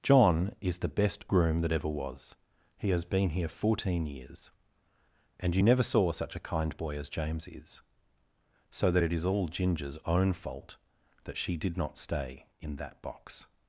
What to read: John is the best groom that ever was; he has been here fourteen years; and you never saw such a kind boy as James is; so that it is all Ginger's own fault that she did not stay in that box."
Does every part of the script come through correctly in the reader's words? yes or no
yes